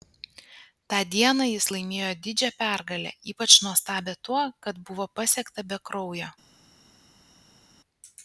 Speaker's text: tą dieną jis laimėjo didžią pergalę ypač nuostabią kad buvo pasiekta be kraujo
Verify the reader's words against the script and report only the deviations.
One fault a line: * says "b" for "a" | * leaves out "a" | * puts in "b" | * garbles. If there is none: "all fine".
* puts in "tuo"